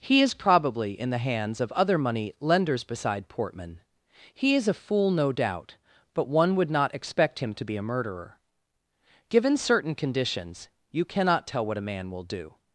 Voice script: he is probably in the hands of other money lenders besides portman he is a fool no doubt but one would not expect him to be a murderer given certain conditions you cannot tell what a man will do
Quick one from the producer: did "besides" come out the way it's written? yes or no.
no